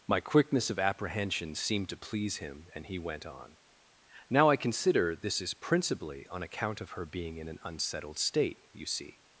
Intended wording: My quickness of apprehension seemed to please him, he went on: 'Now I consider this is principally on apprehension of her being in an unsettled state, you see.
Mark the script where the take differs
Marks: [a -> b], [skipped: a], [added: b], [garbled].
My quickness of apprehension seemed to please him, [added: and] he went on: 'Now I consider this is principally on [apprehension -> account] of her being in an unsettled state, you see.